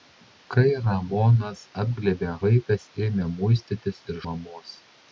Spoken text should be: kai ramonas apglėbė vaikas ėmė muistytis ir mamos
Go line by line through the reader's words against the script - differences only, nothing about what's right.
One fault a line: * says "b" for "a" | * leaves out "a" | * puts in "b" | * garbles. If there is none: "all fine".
all fine